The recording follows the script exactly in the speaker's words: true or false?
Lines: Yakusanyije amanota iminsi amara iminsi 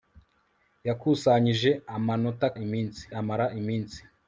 true